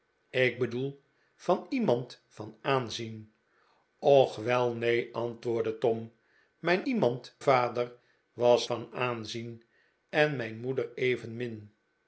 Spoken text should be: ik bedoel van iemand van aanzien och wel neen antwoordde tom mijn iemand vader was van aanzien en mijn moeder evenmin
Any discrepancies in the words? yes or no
no